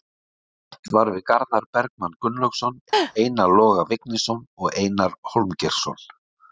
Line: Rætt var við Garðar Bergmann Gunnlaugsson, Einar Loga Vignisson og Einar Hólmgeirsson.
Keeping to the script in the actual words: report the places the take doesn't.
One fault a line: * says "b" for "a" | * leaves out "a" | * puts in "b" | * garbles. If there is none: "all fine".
all fine